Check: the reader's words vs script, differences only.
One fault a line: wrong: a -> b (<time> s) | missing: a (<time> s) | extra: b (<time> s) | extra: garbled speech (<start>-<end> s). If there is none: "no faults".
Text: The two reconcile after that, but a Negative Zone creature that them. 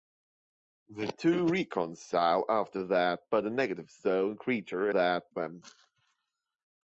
no faults